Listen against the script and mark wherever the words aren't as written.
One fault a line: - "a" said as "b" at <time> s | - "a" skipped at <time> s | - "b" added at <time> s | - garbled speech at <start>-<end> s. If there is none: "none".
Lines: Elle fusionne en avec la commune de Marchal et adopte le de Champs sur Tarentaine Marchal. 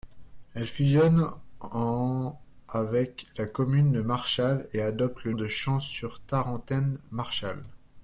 none